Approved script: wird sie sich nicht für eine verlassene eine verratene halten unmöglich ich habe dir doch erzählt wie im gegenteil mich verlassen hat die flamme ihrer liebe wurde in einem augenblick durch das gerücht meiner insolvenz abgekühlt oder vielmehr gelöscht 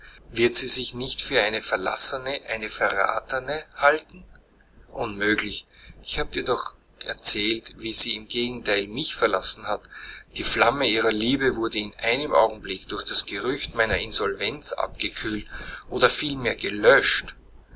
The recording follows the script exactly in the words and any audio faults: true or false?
false